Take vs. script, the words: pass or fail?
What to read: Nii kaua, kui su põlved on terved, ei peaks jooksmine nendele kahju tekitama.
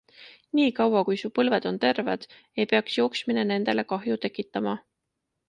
pass